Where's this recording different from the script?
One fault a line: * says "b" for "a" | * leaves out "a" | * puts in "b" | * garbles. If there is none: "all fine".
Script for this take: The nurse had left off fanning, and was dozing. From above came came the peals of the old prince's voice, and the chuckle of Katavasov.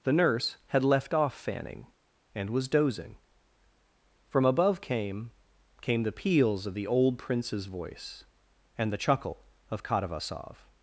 all fine